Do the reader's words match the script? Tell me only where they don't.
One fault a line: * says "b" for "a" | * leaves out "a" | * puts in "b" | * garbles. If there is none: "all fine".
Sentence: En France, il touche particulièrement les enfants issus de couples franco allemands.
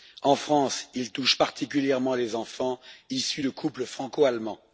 all fine